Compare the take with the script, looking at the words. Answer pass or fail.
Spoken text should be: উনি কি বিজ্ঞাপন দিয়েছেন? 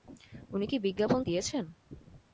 pass